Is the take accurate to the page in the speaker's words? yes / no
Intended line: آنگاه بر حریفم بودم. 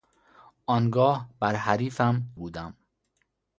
yes